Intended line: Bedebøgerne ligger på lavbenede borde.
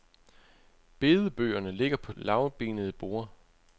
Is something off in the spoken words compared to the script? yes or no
no